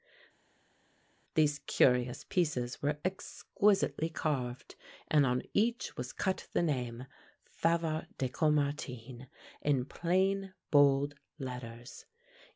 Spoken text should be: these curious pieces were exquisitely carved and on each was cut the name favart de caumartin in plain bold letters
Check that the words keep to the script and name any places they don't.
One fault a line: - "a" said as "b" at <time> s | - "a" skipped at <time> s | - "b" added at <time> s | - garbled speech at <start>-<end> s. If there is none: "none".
none